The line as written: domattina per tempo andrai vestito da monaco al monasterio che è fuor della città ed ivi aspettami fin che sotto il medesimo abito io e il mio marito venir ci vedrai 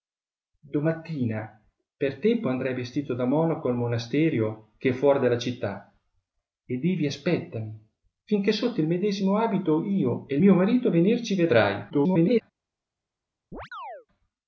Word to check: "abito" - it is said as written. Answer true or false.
true